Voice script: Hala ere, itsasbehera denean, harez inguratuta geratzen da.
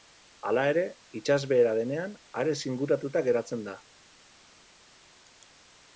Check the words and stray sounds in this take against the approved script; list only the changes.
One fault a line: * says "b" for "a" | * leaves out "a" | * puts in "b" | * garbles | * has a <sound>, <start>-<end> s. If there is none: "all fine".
all fine